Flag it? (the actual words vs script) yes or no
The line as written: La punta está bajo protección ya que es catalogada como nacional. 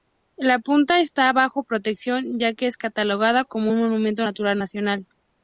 yes